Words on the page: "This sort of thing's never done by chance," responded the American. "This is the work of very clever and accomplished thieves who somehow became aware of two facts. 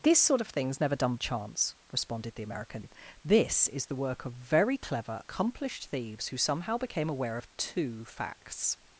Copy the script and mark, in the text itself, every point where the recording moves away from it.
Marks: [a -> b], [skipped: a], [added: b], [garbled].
"This sort of thing's never done [skipped: by] chance," responded the American. "This is the work of very clever [skipped: and] accomplished thieves who somehow became aware of two facts.